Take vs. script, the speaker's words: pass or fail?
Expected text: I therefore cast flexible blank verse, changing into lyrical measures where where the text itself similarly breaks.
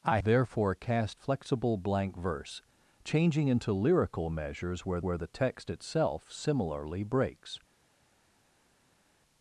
pass